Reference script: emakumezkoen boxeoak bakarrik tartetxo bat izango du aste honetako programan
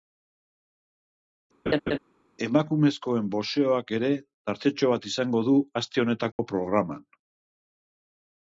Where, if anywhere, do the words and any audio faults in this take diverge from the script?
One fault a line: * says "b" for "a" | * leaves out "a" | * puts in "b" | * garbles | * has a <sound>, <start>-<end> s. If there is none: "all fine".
* has a laugh, 1.7-2.0 s
* says "ere" for "bakarrik"
* has a dropout, 6.3-6.4 s